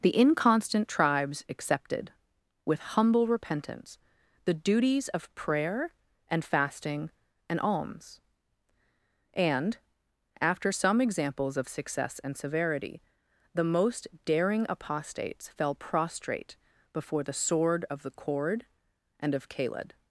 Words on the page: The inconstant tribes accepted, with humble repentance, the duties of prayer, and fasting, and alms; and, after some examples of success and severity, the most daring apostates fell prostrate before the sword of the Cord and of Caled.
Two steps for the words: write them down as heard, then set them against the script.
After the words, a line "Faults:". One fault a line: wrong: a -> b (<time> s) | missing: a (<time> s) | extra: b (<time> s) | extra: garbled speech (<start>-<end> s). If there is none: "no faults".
The inconstant tribes accepted, with humble repentance, the duties of prayer, and fasting, and alms; and, after some examples of success and severity, the most daring apostates fell prostrate before the sword of the Cord and of Caled.
Faults:
no faults